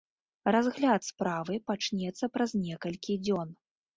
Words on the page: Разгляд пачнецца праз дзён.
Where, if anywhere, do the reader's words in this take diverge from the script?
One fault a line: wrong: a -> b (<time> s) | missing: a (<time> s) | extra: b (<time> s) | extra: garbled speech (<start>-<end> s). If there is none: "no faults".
extra: справы (1.1 s)
extra: некалькі (2.7 s)